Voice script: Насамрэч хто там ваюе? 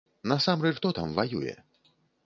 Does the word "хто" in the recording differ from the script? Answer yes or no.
no